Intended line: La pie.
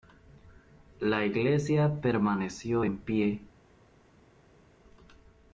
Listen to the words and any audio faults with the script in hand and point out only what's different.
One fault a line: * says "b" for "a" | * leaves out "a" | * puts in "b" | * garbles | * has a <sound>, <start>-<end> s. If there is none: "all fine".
* puts in "iglesia permaneció en"